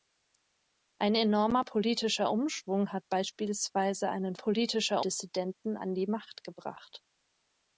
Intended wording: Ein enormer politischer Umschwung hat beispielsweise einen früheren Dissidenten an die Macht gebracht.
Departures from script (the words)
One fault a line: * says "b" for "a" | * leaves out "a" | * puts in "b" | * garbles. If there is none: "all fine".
* says "politischer" for "früheren"